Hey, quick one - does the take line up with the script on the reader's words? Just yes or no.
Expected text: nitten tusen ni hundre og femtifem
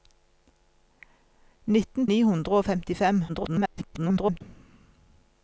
no